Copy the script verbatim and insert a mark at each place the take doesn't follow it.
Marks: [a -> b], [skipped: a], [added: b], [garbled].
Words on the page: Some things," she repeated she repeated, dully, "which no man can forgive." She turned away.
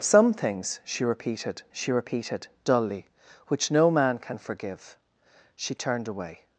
Some things," she repeated she repeated, dully, "which no man can forgive." She turned away.